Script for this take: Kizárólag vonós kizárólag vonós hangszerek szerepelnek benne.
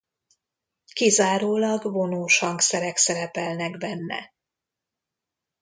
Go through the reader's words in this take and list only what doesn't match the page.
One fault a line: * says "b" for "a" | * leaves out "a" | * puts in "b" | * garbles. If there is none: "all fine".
* leaves out "kizárólag vonós"